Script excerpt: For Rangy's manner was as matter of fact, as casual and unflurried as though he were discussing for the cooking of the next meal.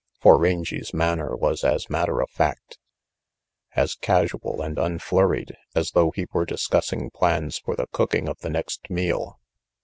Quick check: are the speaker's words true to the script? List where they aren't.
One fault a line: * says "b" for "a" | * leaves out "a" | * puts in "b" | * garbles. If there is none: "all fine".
* puts in "plans"